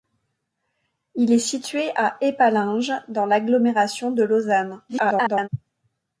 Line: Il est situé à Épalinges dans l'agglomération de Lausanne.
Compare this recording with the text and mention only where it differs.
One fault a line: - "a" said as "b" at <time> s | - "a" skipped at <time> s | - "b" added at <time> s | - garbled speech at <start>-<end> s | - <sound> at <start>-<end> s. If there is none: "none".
- garbled speech at 4.9-5.5 s